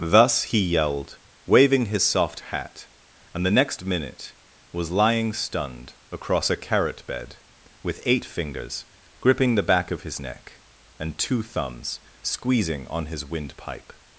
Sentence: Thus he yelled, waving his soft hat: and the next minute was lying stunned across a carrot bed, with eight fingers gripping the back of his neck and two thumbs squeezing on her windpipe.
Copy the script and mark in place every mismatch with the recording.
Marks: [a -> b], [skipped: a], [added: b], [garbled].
Thus he yelled, waving his soft hat: and the next minute was lying stunned across a carrot bed, with eight fingers gripping the back of his neck and two thumbs squeezing on [her -> his] windpipe.